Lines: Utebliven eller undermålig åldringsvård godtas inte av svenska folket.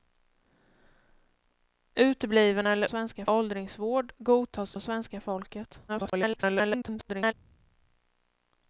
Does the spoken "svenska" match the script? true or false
true